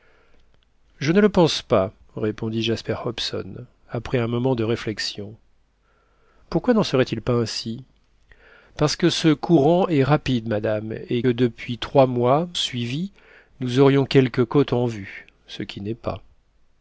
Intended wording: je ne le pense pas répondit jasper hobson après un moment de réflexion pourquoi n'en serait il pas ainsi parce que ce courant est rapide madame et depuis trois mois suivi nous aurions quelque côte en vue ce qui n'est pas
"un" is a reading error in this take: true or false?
false